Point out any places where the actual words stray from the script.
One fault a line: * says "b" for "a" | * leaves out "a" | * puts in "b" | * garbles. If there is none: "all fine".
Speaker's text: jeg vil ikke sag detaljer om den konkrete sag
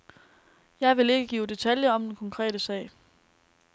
* says "give" for "sag"